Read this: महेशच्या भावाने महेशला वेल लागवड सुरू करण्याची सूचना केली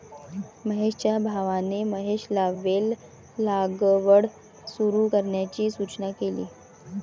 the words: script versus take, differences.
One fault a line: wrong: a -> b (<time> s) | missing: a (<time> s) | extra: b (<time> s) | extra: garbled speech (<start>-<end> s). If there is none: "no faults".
no faults